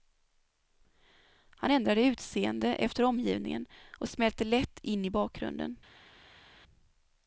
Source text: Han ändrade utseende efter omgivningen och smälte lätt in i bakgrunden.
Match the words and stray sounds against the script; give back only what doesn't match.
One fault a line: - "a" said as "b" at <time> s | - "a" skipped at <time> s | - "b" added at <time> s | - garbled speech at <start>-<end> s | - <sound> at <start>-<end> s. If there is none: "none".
none